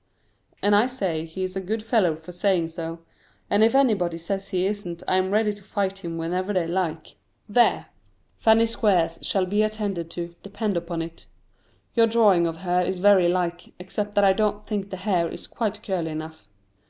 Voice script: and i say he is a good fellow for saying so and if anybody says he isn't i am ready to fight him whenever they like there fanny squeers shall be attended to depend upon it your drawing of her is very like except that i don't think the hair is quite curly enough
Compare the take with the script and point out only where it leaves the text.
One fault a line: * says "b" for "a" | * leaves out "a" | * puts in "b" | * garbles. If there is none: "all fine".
all fine